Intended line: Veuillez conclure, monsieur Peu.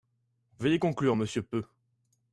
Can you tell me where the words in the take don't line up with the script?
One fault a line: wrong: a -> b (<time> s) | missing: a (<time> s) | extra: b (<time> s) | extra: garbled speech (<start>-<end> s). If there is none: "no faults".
no faults